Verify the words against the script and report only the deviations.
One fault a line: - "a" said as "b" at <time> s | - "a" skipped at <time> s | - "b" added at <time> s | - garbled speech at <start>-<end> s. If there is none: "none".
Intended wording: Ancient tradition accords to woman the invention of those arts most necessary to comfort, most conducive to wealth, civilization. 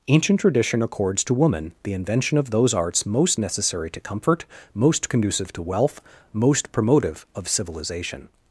- "most promotive of" added at 6.3 s